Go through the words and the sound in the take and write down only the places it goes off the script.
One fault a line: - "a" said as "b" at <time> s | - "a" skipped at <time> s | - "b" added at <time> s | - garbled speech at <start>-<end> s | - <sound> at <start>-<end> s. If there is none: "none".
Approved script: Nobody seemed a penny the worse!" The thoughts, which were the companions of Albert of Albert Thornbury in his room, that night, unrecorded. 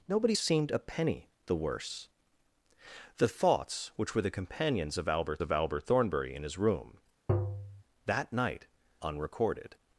- tap at 7.3-7.8 s